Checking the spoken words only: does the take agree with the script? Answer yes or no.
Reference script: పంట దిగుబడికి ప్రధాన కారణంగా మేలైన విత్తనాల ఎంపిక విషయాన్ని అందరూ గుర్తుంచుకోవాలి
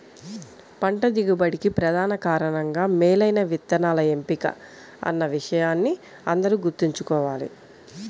no